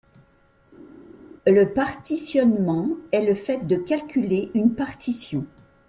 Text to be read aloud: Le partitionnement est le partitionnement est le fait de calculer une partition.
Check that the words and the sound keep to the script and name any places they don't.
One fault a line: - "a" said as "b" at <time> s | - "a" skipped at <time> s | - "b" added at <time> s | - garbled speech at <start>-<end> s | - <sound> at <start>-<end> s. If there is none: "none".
- "partitionnement est le" skipped at 3.3 s